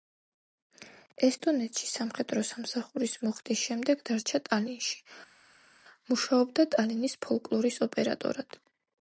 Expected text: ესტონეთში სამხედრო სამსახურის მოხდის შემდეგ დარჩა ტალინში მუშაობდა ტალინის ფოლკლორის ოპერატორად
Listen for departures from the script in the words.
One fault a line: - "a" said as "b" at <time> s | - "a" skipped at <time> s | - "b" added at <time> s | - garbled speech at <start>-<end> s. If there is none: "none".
none